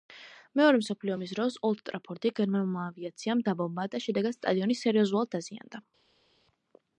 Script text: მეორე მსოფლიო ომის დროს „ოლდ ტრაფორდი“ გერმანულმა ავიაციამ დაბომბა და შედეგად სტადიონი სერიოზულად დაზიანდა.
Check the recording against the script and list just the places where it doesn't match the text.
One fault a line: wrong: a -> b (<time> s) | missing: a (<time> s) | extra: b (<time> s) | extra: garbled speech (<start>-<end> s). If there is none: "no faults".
no faults